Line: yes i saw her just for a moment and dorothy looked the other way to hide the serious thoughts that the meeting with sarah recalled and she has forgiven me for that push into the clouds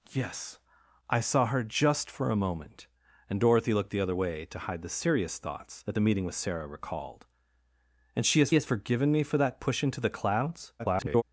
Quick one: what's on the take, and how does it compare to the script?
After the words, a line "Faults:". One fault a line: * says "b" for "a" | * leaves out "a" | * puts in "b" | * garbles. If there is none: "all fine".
yes i saw her just for a moment and dorothy looked the other way to hide the serious thoughts that the meeting with sarah recalled and she has has forgiven me for that push into the clouds [garbled]
Faults:
* puts in "has"
* garbles